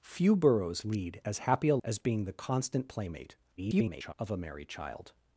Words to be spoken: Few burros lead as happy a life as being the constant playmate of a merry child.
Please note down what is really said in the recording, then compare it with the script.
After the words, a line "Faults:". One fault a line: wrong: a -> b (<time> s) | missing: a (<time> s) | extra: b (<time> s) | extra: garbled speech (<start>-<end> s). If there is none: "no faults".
Few burros lead as happy a as being the constant playmate [garbled] of a merry child.
Faults:
missing: life (1.8 s)
extra: garbled speech (3.6-4.1 s)